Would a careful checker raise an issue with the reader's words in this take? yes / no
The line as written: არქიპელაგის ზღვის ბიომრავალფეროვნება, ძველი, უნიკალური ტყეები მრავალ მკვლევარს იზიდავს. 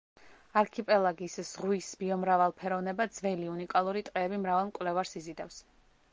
no